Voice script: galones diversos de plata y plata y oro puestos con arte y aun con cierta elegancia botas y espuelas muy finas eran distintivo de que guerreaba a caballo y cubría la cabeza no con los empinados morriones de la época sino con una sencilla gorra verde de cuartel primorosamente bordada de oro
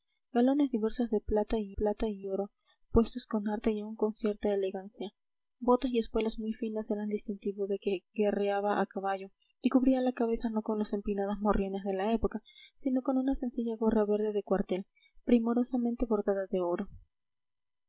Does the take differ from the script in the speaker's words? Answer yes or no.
no